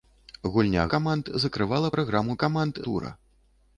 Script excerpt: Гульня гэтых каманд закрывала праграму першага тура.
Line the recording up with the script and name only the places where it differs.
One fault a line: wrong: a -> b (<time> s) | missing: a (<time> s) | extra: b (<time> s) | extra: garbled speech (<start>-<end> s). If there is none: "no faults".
missing: гэтых (0.8 s)
wrong: першага -> каманд (2.4 s)